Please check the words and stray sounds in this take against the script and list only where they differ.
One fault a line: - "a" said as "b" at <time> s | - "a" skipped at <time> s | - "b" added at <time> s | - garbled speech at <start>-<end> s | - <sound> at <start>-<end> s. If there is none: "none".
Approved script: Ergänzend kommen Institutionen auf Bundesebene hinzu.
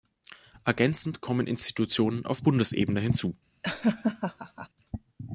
- laugh at 3.6-4.7 s